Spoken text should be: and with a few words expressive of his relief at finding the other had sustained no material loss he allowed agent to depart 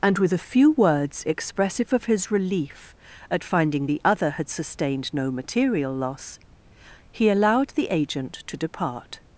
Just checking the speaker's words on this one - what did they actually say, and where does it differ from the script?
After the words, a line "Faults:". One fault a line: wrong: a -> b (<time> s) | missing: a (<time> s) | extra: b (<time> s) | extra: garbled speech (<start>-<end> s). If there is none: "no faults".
and with a few words expressive of his relief at finding the other had sustained no material loss he allowed the agent to depart
Faults:
extra: the (7.7 s)